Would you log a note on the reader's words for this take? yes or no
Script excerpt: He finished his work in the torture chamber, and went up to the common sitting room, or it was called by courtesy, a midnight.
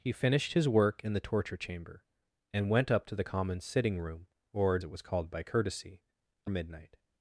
no